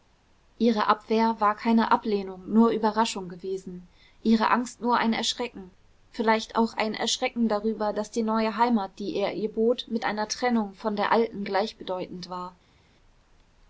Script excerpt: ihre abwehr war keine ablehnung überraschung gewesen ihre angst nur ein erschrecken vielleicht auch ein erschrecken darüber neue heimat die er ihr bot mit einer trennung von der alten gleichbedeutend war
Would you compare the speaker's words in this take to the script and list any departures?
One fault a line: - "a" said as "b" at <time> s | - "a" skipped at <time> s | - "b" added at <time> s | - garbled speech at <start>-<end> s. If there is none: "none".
- "nur" added at 2.5 s
- "daß die" added at 7.9 s